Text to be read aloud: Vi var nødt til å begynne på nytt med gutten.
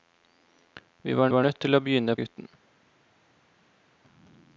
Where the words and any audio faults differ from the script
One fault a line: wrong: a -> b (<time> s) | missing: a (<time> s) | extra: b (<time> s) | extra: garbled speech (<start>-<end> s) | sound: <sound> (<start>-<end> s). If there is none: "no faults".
extra: var (1.3 s)
missing: på nytt med (2.2 s)